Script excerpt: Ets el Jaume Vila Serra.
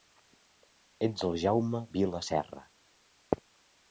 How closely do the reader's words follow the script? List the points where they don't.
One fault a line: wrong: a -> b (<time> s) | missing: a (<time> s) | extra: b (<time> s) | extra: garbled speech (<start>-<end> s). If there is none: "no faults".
no faults